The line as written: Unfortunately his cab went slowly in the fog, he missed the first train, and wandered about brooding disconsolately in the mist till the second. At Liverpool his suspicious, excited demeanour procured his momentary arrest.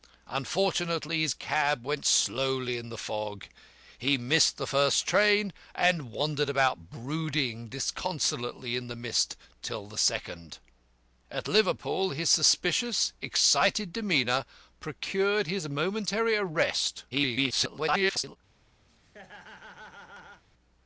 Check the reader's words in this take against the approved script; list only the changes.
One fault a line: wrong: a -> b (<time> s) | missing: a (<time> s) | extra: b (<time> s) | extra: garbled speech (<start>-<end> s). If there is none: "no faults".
extra: garbled speech (17.1-18.4 s)